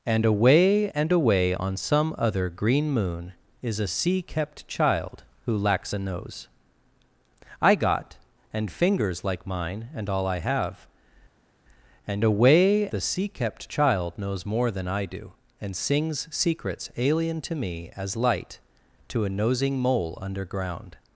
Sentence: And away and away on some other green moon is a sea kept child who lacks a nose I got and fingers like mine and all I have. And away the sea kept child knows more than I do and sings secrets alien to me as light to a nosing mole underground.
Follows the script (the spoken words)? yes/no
yes